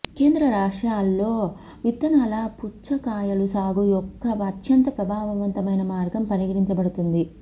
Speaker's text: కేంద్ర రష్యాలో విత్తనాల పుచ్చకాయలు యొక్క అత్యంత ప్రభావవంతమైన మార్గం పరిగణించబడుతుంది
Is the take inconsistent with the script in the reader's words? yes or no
yes